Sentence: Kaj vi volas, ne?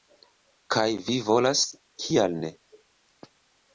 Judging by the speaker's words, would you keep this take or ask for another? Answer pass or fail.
fail